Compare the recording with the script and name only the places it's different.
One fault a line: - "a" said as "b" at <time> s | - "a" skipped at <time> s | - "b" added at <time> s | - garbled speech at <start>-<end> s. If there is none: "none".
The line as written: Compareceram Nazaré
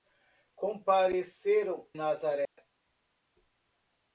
none